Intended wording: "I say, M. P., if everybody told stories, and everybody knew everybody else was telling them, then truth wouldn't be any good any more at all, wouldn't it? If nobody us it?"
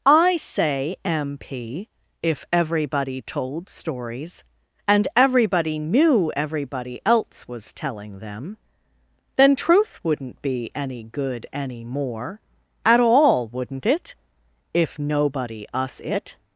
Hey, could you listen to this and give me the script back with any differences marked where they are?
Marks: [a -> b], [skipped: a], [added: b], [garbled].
"I say, M. P., if everybody told stories, and everybody knew everybody else was telling them, then truth wouldn't be any good any more at all, wouldn't it? If nobody us it?"